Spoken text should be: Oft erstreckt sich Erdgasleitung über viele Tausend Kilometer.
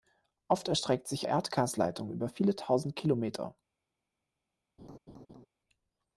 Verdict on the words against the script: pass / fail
pass